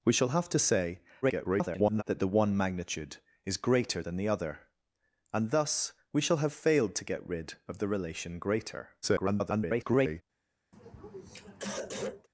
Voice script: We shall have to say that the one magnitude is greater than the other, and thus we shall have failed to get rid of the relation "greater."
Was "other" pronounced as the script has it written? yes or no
yes